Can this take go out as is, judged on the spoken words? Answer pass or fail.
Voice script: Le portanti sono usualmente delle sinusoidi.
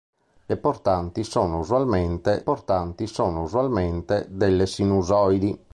fail